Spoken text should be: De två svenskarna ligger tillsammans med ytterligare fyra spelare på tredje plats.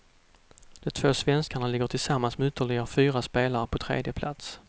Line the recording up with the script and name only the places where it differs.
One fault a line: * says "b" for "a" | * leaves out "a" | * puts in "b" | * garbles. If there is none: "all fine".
all fine